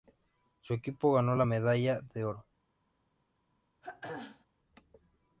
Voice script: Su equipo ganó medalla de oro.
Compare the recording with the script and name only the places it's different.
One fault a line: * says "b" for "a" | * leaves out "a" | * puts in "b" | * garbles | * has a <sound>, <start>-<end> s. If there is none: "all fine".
* puts in "la"
* has a throat clearing, 3.8-4.5 s